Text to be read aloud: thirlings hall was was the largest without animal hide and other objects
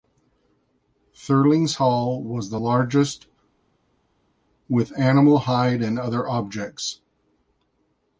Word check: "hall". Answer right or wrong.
right